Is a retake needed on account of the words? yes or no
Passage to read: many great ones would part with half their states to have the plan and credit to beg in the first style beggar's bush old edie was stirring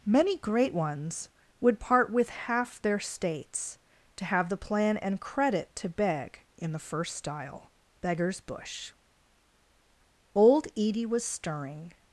no